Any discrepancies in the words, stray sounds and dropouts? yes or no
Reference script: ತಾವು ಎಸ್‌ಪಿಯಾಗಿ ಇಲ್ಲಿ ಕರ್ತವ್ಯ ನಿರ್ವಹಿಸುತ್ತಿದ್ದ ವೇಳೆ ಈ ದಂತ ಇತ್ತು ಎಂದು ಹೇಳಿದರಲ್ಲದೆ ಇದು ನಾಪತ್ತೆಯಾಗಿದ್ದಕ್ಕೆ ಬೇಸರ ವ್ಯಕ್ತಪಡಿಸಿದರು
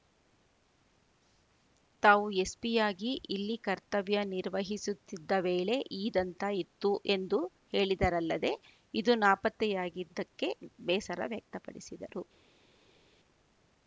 no